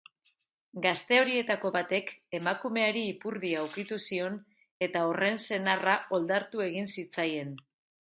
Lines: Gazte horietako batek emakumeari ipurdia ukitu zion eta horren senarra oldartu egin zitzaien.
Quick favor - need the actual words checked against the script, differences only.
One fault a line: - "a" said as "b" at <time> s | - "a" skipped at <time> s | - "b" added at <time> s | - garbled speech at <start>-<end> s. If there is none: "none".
none